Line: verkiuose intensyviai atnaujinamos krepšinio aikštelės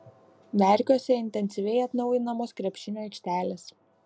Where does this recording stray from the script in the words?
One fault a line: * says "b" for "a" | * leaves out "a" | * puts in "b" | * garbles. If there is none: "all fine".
all fine